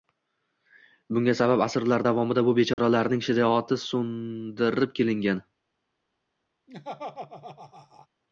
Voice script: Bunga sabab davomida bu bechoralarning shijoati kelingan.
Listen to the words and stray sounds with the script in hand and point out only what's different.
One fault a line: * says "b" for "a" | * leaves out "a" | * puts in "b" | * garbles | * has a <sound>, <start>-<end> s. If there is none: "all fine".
* puts in "asrlar"
* has a dropout, 2.7-2.8 s
* puts in "so‘ndirib"
* has a laugh, 6.7-8.1 s